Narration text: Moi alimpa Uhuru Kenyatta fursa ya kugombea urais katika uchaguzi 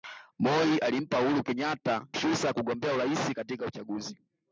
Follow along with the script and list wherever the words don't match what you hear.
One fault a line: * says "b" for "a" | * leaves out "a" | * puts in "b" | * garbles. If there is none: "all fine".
all fine